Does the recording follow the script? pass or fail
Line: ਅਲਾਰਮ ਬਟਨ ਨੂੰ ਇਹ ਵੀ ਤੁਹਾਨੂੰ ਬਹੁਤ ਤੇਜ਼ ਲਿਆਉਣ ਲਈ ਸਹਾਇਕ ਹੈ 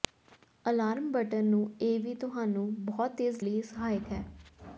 fail